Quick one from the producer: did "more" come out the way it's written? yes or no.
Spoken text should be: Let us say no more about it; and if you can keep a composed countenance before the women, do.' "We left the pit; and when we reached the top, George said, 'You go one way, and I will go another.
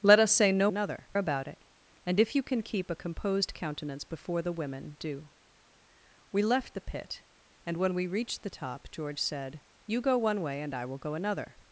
no